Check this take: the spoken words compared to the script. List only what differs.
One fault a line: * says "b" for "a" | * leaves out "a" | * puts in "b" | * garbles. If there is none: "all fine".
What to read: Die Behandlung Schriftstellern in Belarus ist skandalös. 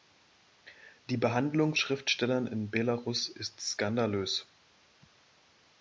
all fine